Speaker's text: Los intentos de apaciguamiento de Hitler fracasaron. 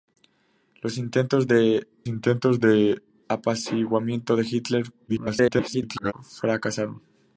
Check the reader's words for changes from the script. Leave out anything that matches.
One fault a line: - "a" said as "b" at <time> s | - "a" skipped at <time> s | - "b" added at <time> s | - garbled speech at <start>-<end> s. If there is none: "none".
- "intentos de" added at 2.1 s
- garbled speech at 5.1-6.1 s